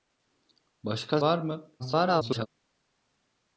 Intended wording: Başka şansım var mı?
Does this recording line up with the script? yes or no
no